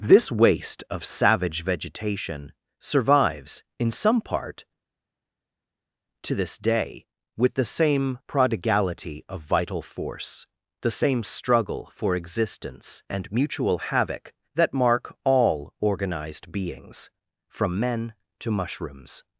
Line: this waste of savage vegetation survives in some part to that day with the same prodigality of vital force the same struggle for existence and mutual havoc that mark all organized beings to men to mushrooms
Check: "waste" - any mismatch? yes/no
no